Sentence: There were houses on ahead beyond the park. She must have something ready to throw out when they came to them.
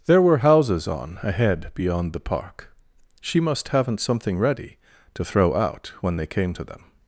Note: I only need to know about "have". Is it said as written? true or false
false